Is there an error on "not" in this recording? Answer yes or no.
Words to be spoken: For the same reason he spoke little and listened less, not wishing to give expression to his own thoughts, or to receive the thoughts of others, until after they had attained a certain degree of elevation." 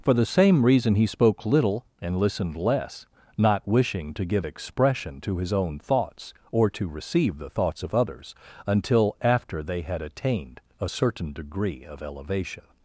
no